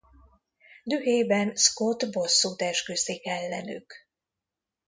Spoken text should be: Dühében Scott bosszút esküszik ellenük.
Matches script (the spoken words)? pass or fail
pass